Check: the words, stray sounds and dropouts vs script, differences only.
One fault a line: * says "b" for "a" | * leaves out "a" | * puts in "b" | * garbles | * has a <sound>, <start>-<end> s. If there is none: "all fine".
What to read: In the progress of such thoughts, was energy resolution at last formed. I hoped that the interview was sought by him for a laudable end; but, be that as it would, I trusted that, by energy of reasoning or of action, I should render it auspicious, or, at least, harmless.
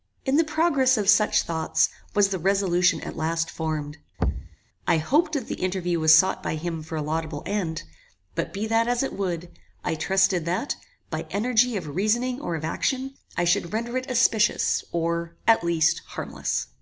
* says "the" for "energy"
* has a thud, 4.2-4.6 s